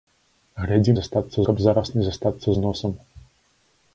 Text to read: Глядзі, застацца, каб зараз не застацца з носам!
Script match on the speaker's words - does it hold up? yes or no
yes